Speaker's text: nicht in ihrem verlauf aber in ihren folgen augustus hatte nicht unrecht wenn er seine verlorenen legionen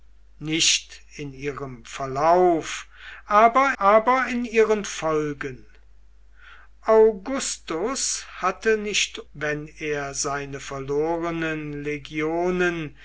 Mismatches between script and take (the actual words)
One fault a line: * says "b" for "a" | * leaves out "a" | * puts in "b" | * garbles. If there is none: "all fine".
* puts in "aber"
* leaves out "unrecht"